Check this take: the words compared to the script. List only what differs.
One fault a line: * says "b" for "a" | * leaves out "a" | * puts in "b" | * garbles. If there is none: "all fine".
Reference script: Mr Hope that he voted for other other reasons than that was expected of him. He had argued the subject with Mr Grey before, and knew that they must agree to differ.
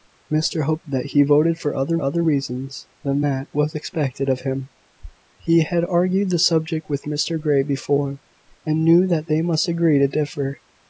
all fine